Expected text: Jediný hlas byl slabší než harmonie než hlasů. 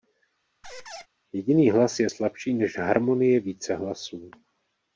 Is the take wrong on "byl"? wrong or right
wrong